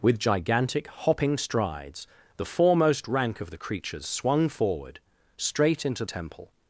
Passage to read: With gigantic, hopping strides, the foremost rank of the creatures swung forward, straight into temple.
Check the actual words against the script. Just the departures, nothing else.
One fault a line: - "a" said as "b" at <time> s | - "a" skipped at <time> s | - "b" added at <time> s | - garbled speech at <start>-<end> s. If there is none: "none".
none